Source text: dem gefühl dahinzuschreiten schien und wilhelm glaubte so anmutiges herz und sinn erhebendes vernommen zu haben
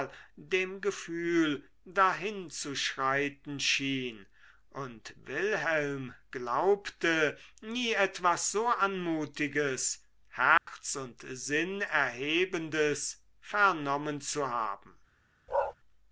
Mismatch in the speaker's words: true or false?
true